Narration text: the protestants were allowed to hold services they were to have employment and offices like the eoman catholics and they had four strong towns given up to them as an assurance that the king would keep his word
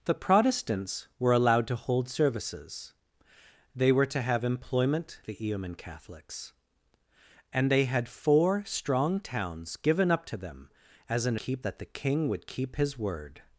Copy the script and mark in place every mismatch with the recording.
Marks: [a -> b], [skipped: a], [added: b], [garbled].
the protestants were allowed to hold services they were to have employment [skipped: and offices like] the eoman catholics and they had four strong towns given up to them as an [assurance -> keep] that the king would keep his word